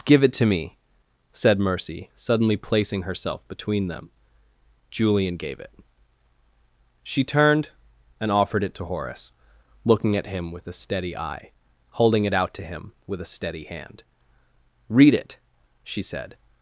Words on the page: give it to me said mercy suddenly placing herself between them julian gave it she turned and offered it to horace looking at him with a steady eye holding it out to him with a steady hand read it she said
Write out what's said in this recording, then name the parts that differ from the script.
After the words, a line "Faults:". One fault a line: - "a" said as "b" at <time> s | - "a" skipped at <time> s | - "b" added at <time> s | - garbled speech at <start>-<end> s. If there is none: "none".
give it to me said mercy suddenly placing herself between them julian gave it she turned and offered it to horace looking at him with a steady eye holding it out to him with a steady hand read it she said
Faults:
none